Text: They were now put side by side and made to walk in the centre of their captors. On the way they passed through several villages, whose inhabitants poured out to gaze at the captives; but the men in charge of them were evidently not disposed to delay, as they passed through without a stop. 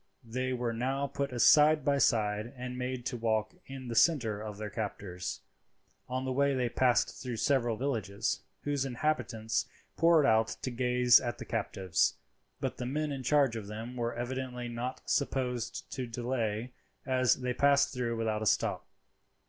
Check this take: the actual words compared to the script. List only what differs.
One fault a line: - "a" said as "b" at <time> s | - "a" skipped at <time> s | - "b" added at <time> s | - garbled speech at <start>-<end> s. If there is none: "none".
none